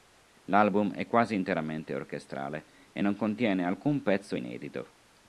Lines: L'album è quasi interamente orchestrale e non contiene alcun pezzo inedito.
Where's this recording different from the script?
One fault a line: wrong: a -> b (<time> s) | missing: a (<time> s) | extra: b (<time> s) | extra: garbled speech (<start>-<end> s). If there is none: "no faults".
no faults